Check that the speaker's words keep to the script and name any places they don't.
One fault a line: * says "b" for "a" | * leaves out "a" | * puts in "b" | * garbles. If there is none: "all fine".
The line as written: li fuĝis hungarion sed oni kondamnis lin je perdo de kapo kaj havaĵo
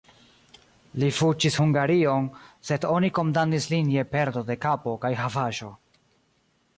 all fine